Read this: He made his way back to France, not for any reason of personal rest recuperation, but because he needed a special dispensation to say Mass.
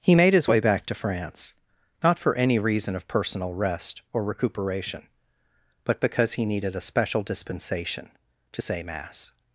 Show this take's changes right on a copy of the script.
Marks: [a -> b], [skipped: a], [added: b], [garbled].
He made his way back to France, not for any reason of personal rest [added: or] recuperation, but because he needed a special dispensation to say Mass.